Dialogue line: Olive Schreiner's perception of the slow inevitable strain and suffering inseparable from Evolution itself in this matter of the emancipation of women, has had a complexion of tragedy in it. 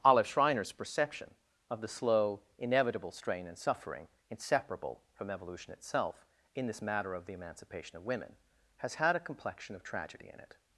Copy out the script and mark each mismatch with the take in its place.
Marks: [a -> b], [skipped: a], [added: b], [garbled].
Olive Schreiner's perception of the slow inevitable strain and suffering inseparable from Evolution itself in this matter of the emancipation of women, has had a complexion of tragedy in it.